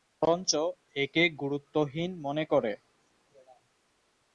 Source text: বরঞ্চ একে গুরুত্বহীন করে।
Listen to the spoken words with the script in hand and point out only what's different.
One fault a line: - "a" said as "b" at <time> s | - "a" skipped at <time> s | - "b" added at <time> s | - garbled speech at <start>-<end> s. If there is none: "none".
- "মনে" added at 2.2 s